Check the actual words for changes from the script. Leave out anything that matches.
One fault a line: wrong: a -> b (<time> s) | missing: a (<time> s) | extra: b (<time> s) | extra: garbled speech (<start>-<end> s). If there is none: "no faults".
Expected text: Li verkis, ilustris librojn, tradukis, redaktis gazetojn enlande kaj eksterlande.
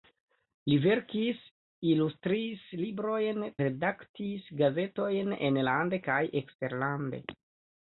missing: tradukis (3.4 s)